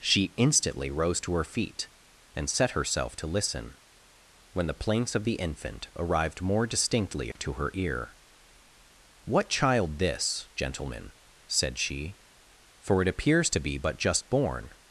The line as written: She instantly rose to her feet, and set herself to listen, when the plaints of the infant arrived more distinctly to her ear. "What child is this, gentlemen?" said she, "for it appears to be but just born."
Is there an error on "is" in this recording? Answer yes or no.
yes